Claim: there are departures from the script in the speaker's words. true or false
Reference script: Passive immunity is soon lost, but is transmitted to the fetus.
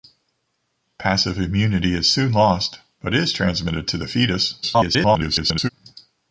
true